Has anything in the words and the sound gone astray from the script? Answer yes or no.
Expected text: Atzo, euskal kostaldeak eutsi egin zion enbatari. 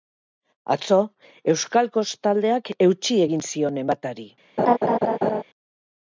yes